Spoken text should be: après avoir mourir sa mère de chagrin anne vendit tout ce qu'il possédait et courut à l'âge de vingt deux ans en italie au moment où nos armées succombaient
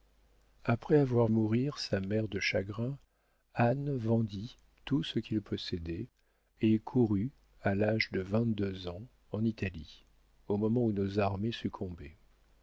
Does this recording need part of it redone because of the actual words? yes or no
no